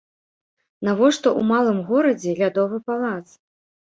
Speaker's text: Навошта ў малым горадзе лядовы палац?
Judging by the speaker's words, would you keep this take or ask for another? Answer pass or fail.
pass